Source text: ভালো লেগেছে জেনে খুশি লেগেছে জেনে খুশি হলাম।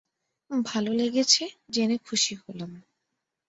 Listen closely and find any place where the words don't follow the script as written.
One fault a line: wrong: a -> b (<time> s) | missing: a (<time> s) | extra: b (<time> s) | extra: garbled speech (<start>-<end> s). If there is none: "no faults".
missing: লেগেছে জেনে খুশি (2.3 s)